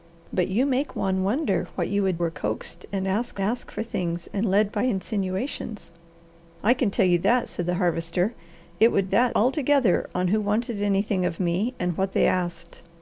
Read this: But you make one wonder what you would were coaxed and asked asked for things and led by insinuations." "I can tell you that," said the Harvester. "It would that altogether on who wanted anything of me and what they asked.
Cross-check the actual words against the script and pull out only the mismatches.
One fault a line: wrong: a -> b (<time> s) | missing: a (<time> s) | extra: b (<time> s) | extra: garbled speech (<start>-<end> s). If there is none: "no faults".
no faults